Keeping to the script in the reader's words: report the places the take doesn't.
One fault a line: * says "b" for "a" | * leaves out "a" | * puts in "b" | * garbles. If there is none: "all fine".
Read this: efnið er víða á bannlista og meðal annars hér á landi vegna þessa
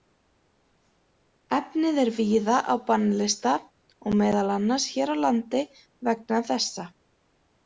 all fine